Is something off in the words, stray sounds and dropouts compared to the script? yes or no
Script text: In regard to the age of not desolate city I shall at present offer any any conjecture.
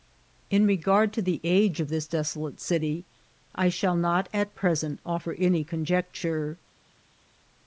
yes